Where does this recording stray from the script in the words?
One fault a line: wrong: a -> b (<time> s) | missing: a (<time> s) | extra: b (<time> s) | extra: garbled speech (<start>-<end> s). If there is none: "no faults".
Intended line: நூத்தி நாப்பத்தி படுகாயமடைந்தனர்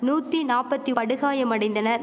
no faults